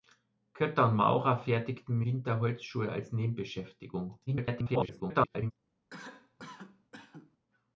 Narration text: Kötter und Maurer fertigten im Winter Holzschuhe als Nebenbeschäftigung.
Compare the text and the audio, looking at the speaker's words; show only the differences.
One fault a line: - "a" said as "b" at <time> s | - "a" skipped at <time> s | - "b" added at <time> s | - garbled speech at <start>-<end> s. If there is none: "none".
- "im" skipped at 2.0 s
- garbled speech at 4.3-5.5 s